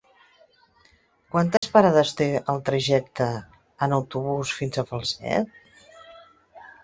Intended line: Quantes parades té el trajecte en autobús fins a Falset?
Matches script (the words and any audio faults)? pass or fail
fail